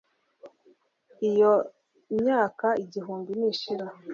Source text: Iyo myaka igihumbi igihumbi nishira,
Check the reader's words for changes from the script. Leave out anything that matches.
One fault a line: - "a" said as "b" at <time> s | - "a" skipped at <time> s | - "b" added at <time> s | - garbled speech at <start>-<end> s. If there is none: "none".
- "igihumbi" skipped at 3.3 s